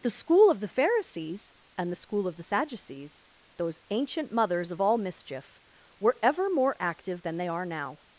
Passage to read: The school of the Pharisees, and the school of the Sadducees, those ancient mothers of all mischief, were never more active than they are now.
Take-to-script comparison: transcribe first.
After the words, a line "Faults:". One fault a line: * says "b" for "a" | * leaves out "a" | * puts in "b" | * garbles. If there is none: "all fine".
The school of the Pharisees, and the school of the Sadducees, those ancient mothers of all mischief, were ever more active than they are now.
Faults:
* says "ever" for "never"